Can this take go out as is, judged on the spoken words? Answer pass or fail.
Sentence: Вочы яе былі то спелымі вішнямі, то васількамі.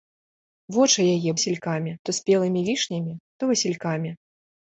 fail